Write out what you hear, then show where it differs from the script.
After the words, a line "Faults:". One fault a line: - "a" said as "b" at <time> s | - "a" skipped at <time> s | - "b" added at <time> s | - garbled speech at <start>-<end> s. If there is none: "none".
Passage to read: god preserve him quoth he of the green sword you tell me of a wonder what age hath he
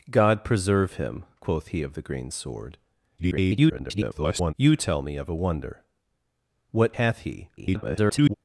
god preserve him quoth he of the green sword [garbled] you tell me of a wonder what hath he [garbled]
Faults:
- garbled speech at 3.2-4.5 s
- "age" skipped at 6.9 s
- garbled speech at 7.6-8.3 s